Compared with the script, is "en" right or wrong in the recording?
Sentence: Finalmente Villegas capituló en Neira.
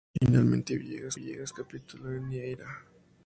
right